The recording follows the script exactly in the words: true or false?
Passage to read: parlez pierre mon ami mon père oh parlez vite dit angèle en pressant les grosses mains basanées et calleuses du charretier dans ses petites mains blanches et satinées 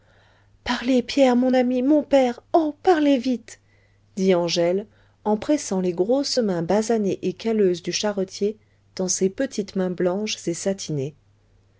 true